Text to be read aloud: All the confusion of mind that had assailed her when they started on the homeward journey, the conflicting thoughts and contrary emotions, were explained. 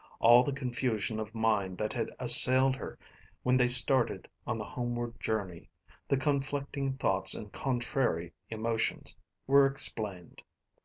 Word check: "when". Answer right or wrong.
right